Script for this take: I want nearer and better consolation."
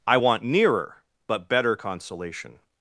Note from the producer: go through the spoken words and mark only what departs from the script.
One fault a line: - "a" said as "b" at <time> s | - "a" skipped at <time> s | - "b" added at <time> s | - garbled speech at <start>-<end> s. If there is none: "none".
- "and" said as "but" at 1.3 s